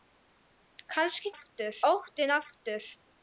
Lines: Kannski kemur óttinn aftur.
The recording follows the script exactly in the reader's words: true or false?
false